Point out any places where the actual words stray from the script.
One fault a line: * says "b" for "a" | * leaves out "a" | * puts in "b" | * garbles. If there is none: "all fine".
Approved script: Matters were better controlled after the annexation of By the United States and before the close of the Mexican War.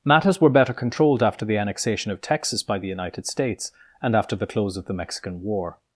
* puts in "Texas"
* says "after" for "before"